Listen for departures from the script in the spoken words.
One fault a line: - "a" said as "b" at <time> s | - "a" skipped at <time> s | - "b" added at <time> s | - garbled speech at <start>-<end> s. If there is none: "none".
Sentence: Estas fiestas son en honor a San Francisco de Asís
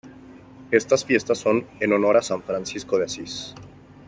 none